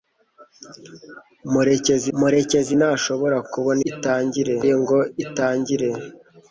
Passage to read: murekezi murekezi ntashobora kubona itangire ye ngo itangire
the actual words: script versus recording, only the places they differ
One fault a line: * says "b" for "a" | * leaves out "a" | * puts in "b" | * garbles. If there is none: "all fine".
all fine